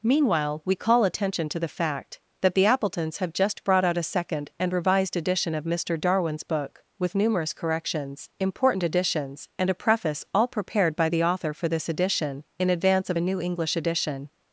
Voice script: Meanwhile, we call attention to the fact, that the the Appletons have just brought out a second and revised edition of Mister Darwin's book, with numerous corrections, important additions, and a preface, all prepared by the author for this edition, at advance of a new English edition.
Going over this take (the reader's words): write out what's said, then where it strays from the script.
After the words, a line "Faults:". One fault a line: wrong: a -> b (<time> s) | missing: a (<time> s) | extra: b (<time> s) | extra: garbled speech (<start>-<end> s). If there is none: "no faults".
Meanwhile, we call attention to the fact, that the Appletons have just brought out a second and revised edition of Mister Darwin's book, with numerous corrections, important additions, and a preface, all prepared by the author for this edition, in advance of a new English edition.
Faults:
missing: the (2.6 s)
wrong: at -> in (12.6 s)